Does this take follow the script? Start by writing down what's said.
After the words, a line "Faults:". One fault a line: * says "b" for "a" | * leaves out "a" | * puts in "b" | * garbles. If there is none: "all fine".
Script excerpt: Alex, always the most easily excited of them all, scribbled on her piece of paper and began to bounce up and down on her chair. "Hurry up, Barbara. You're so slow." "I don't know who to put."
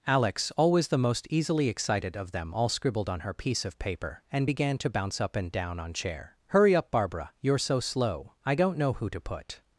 Alex, always the most easily excited of them all, scribbled on her piece of paper and began to bounce up and down on chair. "Hurry up, Barbara. You're so slow." "I don't know who to put."
Faults:
* leaves out "her"